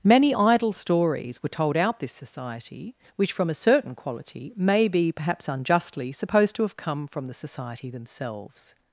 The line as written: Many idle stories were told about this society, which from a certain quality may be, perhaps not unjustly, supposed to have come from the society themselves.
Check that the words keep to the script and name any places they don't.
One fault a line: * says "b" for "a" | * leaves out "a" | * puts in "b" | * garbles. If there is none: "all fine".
* says "out" for "about"
* leaves out "not"